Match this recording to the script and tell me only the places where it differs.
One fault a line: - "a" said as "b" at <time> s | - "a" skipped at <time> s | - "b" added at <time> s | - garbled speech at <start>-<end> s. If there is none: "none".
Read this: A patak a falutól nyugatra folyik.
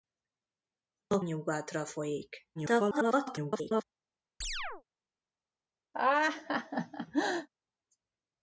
- "patak a falutól" skipped at 1.2 s
- garbled speech at 2.6-3.8 s